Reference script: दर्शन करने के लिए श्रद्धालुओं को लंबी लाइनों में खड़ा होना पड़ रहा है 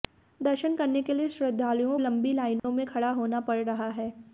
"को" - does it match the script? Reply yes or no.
no